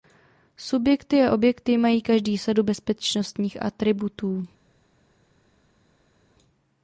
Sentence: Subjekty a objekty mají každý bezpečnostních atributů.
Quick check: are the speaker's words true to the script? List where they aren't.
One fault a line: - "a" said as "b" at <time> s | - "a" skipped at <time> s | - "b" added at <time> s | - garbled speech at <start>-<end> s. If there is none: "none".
- "sadu" added at 2.4 s